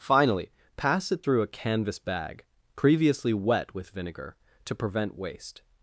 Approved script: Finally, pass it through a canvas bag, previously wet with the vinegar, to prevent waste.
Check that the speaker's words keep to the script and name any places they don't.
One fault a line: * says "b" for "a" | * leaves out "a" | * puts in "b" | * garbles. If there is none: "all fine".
* leaves out "the"